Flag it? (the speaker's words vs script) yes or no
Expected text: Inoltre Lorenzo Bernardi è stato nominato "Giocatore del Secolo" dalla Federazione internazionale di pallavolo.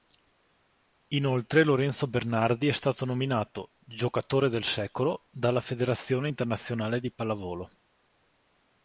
no